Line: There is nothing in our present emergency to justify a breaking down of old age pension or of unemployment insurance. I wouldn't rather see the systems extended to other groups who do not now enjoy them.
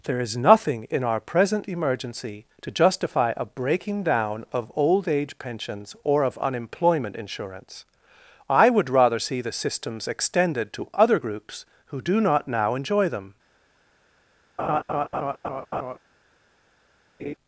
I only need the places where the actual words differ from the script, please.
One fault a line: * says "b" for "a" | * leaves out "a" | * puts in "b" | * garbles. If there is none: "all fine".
* says "pensions" for "pension"
* says "would" for "wouldn't"